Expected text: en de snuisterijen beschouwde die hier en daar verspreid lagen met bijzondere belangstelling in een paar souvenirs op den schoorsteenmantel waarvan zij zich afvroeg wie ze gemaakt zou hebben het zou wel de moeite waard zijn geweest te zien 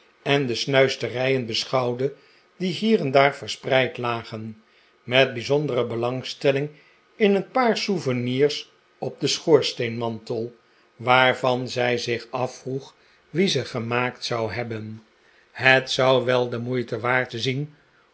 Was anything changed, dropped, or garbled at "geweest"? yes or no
yes